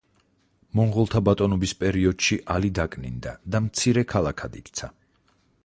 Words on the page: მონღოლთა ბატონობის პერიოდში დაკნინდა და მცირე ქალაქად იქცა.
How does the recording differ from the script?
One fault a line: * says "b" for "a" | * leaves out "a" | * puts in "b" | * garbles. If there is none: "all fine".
* puts in "ალი"